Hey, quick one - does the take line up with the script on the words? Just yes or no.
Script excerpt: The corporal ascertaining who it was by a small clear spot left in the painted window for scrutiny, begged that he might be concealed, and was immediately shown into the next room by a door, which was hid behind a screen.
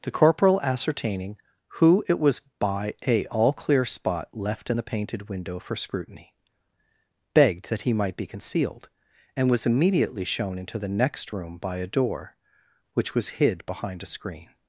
no